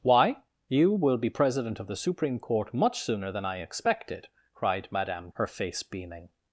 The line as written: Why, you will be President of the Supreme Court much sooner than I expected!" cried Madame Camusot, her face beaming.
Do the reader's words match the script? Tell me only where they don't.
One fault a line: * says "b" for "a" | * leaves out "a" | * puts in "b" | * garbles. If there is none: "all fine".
* leaves out "Camusot"